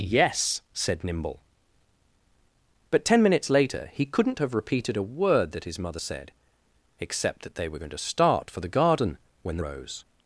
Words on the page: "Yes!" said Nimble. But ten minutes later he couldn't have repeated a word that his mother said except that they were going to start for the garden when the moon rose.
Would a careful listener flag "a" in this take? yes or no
no